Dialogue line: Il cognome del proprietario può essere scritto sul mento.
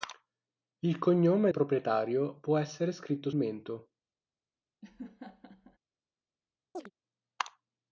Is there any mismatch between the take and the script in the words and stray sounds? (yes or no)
yes